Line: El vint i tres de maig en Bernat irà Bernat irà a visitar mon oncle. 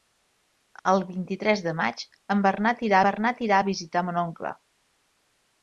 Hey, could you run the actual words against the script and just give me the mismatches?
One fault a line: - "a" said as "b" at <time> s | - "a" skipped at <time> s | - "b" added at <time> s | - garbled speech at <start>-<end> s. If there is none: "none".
none